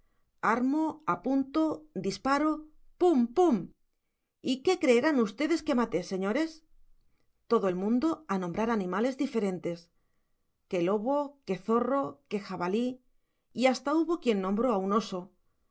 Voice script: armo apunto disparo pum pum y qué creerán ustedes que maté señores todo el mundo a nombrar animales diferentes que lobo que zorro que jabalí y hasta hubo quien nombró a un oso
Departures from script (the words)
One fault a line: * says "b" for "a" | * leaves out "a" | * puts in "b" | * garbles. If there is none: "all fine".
all fine